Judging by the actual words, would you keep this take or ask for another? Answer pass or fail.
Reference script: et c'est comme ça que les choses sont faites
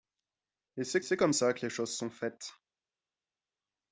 fail